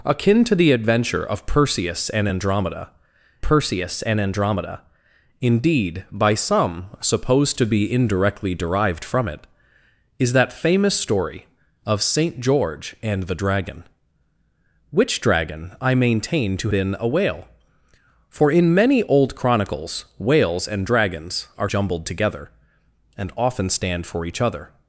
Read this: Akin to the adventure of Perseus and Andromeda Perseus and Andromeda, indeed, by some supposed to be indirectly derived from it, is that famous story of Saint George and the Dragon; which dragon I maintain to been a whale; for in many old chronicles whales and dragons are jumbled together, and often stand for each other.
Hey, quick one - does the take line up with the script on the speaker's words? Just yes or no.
yes